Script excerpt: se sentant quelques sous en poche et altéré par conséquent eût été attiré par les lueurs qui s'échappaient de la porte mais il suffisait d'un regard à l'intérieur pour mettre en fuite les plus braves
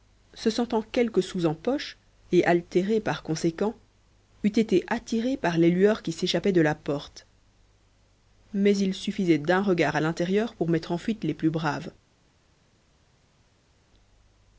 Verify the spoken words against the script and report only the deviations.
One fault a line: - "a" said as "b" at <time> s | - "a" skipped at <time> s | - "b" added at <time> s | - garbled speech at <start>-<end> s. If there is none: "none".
none